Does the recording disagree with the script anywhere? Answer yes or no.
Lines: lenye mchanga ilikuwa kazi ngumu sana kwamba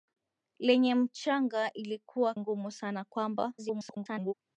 yes